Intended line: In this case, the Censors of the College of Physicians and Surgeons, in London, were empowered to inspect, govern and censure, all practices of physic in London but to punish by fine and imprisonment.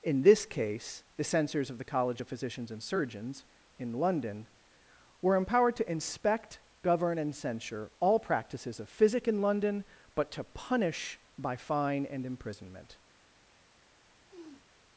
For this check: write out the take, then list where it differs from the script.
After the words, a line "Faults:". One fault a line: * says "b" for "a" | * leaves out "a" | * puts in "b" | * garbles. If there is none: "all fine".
In this case, the Censors of the College of Physicians and Surgeons, in London, were empowered to inspect, govern and censure, all practices of physic in London but to punish by fine and imprisonment.
Faults:
all fine